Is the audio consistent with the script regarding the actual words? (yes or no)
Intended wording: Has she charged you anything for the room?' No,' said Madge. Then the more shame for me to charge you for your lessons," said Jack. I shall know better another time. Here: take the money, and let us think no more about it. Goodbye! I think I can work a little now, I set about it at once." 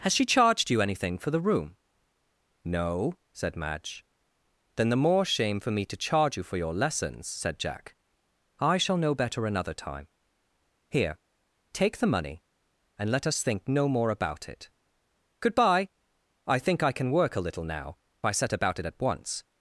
yes